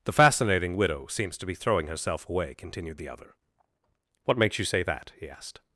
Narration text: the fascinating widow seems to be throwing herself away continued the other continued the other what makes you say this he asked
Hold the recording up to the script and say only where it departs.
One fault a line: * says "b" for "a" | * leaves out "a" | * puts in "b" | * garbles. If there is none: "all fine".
* leaves out "continued the other"
* says "that" for "this"